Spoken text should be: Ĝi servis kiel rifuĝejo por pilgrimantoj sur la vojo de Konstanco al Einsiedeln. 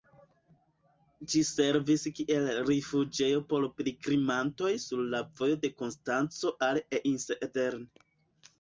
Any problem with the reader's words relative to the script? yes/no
no